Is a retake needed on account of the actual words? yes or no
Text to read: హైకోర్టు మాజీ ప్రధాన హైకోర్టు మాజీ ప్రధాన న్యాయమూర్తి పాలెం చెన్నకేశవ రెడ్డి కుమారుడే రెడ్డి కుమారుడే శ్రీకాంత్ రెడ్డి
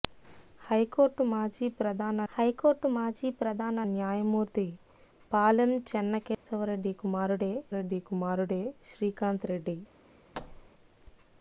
no